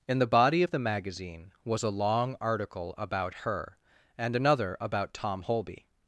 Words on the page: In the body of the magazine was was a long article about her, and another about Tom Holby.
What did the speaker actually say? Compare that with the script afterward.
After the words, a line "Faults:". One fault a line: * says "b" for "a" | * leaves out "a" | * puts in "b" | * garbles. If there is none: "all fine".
In the body of the magazine was a long article about her, and another about Tom Holby.
Faults:
* leaves out "was"